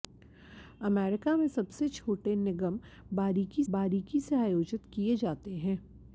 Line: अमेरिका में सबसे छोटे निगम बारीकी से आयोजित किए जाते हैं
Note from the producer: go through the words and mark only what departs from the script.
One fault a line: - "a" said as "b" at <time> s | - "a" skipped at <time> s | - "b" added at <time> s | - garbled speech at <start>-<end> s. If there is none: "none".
- "बारीकी" added at 3.7 s